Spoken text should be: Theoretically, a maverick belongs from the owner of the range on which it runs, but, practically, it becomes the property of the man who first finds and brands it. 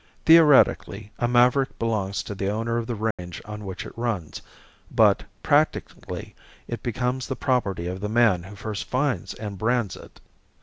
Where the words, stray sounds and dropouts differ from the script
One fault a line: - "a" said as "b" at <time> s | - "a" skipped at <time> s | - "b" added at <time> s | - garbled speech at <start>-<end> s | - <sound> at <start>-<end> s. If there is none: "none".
- "from" said as "to" at 2.2 s
- dropout at 3.1-3.2 s